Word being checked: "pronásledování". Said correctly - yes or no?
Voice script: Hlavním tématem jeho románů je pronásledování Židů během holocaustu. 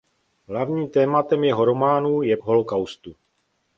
no